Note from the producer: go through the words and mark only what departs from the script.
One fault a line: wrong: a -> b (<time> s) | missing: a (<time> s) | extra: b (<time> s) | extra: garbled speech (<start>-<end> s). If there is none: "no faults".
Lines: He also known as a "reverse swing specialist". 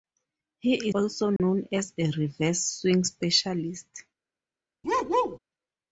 no faults